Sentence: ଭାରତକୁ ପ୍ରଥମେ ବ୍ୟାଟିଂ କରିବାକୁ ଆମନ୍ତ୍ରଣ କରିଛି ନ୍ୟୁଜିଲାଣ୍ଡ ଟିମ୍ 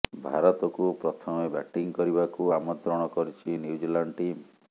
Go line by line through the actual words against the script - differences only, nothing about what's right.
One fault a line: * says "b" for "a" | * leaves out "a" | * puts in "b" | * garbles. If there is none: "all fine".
all fine